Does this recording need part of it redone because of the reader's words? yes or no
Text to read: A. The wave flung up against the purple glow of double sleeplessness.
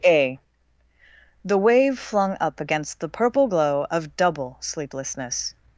no